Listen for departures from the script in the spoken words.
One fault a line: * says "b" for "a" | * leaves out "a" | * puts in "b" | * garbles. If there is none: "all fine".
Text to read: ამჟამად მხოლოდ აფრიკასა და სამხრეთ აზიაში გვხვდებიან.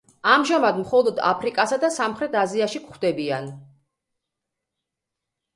all fine